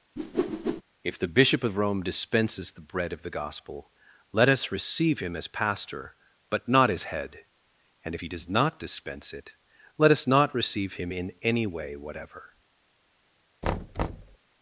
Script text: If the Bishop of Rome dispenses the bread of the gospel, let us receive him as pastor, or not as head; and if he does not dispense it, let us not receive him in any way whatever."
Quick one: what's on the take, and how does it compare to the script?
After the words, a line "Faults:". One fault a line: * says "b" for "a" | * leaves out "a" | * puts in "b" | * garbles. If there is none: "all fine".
If the Bishop of Rome dispenses the bread of the gospel, let us receive him as pastor, but not as head; and if he does not dispense it, let us not receive him in any way whatever."
Faults:
* says "but" for "or"